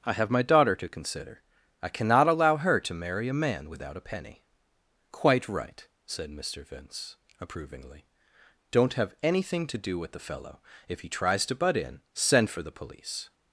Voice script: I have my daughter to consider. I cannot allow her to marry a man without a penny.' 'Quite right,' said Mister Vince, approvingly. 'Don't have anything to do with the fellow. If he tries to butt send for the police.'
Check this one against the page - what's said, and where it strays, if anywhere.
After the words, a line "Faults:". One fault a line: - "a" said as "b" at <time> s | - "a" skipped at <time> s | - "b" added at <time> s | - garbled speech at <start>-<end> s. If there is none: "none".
I have my daughter to consider. I cannot allow her to marry a man without a penny.' 'Quite right,' said Mister Vince, approvingly. 'Don't have anything to do with the fellow. If he tries to butt in, send for the police.'
Faults:
- "in" added at 11.8 s